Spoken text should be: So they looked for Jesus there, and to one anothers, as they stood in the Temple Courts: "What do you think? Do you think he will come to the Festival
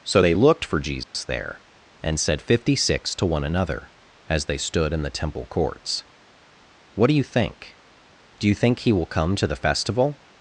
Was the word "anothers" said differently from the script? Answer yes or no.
yes